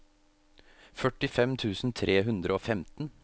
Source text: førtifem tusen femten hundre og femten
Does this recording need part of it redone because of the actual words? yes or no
yes